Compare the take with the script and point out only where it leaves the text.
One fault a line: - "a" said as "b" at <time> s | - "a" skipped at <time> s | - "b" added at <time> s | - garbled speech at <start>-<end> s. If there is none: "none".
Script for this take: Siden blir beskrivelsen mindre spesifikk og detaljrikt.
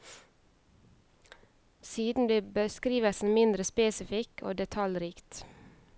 none